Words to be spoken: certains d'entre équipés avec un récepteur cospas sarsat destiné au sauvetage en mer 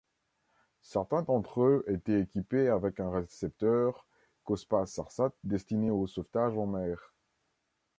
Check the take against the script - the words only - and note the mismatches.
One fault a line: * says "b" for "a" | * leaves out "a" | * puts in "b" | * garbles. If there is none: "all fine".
* puts in "eux étaient"